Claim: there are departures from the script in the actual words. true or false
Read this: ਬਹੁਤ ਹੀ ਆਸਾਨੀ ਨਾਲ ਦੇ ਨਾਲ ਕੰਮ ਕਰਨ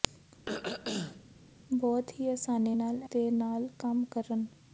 false